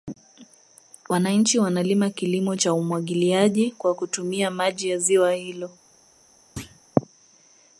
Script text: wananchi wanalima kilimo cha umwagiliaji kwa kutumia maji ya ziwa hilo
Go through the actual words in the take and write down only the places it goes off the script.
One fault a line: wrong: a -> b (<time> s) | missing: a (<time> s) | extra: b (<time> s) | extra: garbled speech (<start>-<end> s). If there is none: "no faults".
no faults